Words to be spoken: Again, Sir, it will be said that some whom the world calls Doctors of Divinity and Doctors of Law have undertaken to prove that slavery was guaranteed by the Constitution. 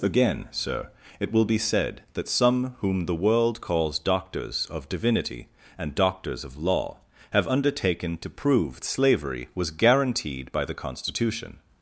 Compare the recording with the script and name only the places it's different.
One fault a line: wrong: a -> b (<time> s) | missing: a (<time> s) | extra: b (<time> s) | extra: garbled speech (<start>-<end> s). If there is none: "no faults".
missing: that (8.8 s)